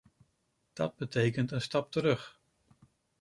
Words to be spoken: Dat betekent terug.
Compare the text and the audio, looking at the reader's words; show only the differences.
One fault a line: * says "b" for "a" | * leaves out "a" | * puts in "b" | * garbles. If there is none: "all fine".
* puts in "een stap"